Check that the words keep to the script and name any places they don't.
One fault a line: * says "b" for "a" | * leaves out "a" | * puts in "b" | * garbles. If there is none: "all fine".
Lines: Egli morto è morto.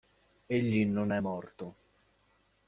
* says "non" for "morto"